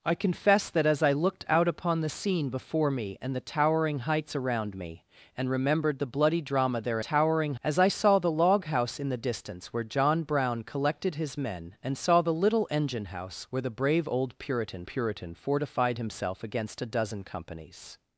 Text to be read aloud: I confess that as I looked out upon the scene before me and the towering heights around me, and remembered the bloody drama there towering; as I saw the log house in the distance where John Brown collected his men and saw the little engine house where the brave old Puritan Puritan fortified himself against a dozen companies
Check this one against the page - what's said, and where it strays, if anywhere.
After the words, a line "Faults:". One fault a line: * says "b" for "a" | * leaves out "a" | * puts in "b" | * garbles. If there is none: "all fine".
I confess that as I looked out upon the scene before me and the towering heights around me, and remembered the bloody drama there towering; as I saw the log house in the distance where John Brown collected his men and saw the little engine house where the brave old Puritan Puritan fortified himself against a dozen companies
Faults:
all fine